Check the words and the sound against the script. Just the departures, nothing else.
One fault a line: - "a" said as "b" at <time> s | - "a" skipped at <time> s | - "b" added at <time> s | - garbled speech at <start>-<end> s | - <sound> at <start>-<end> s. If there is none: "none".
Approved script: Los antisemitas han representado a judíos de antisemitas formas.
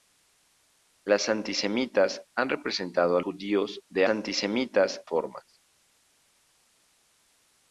none